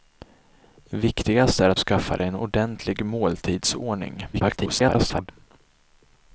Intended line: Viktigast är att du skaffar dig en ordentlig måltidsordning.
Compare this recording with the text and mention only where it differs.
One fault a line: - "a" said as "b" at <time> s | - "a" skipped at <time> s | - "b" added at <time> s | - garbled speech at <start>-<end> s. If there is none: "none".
- "du" skipped at 1.8 s
- garbled speech at 4.3-5.3 s